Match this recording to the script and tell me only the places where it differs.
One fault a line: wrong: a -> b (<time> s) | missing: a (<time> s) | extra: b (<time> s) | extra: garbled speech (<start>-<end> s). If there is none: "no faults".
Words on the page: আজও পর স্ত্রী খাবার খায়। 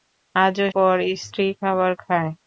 no faults